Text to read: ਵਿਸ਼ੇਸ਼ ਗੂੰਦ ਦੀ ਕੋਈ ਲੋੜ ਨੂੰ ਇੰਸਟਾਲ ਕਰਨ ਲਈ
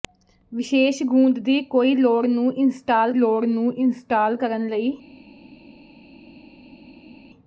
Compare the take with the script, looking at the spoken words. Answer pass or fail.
fail